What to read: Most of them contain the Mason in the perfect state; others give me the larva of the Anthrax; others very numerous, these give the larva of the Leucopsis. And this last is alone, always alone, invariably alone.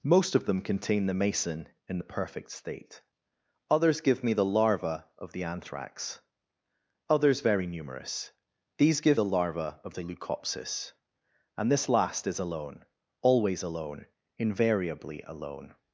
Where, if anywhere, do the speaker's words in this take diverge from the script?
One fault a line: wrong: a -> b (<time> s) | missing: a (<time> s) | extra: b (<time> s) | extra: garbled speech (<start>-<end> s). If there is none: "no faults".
no faults